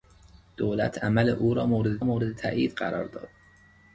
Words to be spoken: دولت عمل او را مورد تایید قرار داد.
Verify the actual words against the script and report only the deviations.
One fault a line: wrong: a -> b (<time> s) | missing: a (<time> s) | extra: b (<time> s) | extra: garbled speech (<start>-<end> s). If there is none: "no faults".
extra: مورد (2.0 s)